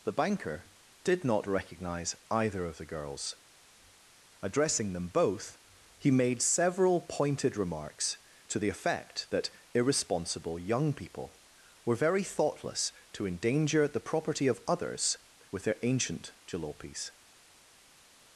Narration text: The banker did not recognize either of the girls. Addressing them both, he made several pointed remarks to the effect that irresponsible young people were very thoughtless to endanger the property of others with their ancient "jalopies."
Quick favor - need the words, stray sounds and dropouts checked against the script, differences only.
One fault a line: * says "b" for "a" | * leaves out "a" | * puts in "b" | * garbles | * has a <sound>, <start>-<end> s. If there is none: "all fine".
all fine